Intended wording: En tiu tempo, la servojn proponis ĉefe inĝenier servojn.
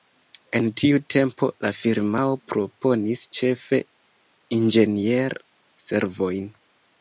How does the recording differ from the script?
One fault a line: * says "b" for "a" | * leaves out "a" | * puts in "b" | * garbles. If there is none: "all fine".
* says "firmao" for "servojn"